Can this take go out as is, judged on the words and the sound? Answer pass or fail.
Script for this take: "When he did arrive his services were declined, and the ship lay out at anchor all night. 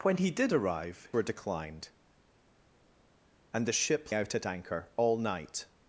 fail